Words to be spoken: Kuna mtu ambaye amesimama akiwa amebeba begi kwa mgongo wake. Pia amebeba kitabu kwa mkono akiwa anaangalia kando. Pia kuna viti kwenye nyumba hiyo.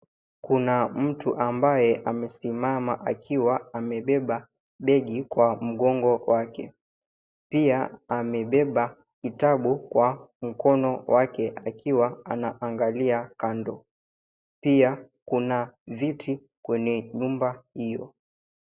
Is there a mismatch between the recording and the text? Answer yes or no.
yes